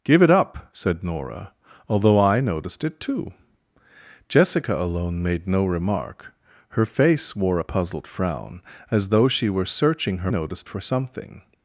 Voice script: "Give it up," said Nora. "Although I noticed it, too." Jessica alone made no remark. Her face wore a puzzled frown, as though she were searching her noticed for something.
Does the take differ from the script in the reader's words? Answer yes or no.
no